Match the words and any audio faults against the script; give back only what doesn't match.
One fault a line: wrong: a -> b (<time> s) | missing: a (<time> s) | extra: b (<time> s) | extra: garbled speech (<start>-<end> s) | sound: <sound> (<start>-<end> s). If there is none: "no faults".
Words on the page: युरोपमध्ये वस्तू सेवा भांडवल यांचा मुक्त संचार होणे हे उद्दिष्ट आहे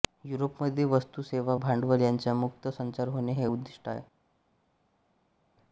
no faults